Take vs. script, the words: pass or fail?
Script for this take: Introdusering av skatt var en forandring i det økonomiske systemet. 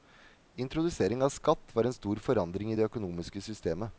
fail